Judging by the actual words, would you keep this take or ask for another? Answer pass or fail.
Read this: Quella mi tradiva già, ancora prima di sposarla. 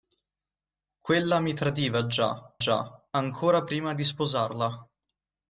fail